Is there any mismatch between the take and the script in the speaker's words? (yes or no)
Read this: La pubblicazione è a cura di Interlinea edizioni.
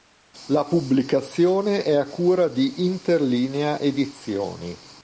no